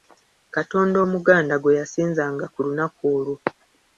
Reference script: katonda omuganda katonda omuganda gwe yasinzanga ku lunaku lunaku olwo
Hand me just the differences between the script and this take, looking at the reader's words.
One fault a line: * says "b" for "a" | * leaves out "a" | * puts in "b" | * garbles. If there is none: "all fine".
* leaves out "katonda omuganda"
* leaves out "lunaku"